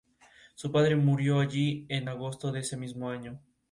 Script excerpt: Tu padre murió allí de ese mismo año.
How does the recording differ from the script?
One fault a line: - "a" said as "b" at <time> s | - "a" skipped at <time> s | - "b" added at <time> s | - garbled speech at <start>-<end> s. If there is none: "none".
- "Tu" said as "Su" at 0.6 s
- "en agosto" added at 1.9 s